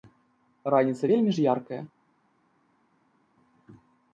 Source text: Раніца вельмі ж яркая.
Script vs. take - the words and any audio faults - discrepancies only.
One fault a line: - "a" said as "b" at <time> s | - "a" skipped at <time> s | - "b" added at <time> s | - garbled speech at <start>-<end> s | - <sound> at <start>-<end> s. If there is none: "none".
none